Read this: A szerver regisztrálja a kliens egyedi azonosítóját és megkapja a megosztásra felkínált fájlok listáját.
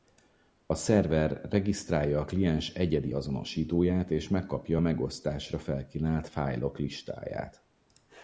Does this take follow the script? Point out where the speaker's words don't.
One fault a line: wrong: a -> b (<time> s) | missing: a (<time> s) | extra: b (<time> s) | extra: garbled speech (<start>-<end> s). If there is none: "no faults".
no faults